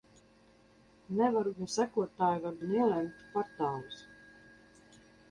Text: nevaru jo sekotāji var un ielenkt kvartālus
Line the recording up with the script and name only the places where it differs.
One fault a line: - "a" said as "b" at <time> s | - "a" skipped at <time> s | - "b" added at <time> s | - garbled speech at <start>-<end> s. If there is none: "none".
none